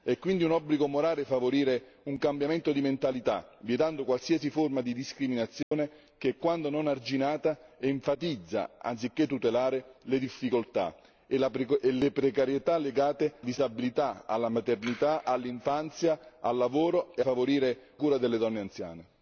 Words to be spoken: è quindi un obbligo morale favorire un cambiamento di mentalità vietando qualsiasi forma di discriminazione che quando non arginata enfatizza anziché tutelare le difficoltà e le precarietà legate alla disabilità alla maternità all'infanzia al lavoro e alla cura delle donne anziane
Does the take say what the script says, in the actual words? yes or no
no